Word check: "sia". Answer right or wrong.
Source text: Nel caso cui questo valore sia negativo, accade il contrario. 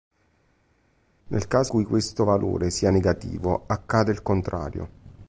right